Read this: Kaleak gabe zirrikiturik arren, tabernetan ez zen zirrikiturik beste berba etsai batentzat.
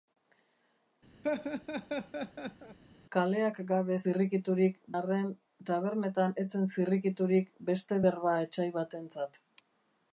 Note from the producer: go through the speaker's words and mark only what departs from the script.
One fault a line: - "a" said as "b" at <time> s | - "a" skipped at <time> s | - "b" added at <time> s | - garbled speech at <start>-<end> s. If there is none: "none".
none